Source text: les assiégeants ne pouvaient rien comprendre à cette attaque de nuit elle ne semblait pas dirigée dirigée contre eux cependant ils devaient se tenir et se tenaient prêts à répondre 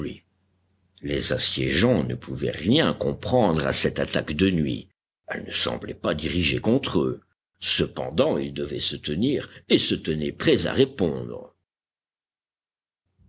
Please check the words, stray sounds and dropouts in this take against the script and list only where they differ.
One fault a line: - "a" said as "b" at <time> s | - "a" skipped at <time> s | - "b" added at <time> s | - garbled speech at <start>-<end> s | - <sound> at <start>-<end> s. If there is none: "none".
- "dirigée" skipped at 6.6 s